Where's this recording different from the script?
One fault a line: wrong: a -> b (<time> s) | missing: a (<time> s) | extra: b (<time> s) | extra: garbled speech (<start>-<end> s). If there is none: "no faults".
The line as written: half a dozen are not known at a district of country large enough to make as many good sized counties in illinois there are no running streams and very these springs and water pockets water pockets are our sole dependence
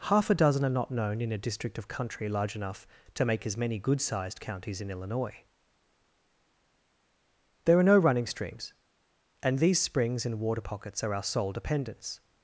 wrong: at -> in (1.2 s)
missing: very (9.6 s)
missing: water pockets (11.0 s)